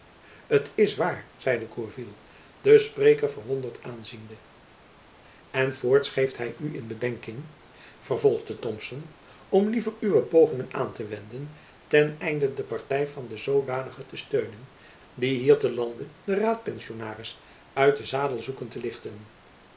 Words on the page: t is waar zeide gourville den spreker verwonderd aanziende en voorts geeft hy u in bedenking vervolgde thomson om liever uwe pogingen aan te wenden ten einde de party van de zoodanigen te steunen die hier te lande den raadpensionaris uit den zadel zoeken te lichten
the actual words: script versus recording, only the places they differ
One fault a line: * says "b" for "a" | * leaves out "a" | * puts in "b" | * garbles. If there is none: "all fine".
all fine